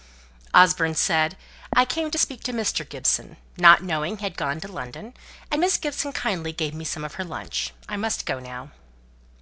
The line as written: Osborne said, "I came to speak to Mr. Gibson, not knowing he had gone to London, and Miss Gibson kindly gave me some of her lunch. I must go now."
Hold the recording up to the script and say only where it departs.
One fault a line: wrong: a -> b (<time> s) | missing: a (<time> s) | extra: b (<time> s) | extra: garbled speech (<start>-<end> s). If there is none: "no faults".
no faults